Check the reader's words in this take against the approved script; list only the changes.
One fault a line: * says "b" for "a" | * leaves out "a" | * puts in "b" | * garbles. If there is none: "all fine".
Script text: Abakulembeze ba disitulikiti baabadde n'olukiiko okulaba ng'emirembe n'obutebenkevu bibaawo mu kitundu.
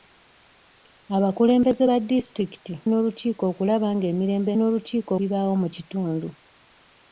* leaves out "baabadde"
* says "n'olukiiko" for "n'obutebenkevu"